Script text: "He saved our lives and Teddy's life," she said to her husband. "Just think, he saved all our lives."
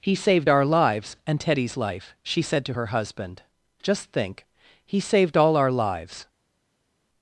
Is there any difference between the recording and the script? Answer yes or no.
no